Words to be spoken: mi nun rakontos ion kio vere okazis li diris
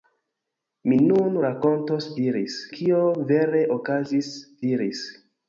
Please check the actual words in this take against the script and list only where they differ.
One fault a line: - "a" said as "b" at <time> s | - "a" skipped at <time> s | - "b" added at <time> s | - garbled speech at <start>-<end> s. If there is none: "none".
- "ion" said as "diris" at 2.2 s
- "li" skipped at 4.4 s